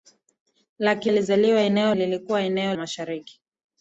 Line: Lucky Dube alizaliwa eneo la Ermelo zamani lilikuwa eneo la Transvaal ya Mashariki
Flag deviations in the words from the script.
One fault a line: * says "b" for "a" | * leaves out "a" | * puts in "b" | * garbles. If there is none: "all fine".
* leaves out "Dube"
* leaves out "la Ermelo zamani"
* leaves out "la Transvaal ya"